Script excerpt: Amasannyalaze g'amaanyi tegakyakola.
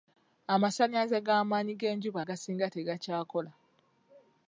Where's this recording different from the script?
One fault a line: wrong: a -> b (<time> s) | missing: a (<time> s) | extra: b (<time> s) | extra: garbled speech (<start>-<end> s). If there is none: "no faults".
extra: g'enjuba agasinga (1.8 s)